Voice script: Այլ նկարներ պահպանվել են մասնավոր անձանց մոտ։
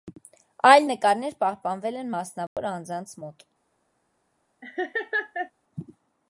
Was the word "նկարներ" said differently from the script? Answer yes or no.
no